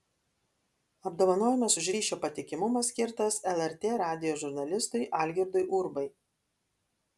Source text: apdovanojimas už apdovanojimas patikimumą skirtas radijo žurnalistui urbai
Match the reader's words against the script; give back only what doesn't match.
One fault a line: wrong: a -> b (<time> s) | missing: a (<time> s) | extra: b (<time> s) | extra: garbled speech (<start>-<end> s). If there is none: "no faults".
wrong: apdovanojimas -> ryšio (1.9 s)
extra: lrt (3.6 s)
extra: algirdui (5.3 s)